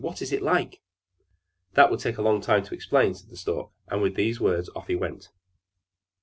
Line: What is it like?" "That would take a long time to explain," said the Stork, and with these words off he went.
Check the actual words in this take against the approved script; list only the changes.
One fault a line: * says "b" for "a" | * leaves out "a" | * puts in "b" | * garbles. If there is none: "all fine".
all fine